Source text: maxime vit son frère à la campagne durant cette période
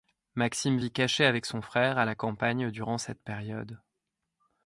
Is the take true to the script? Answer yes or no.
no